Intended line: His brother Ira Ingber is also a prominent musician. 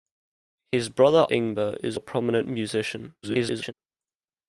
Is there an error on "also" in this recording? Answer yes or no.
yes